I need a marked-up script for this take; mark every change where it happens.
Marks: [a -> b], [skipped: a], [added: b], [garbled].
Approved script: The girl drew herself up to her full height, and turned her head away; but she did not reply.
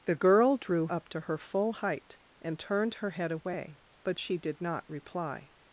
The girl drew [skipped: herself] up to her full height, and turned her head away; but she did not reply.